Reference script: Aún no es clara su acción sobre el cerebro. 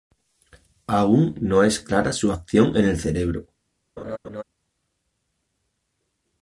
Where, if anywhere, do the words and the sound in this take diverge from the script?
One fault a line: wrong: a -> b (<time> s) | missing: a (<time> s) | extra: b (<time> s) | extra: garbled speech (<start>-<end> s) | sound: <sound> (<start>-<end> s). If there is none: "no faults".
wrong: sobre -> en (2.8 s)
sound: laugh (4.0-4.4 s)